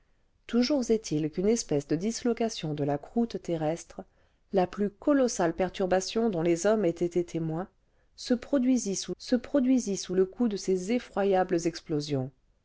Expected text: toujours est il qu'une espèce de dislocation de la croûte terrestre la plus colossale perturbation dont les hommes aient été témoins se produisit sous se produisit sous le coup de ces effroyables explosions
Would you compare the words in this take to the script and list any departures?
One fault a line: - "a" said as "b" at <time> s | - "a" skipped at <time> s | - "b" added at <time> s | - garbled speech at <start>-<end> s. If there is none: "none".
none